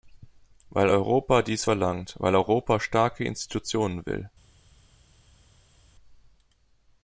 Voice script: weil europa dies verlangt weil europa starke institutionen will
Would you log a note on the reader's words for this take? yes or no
no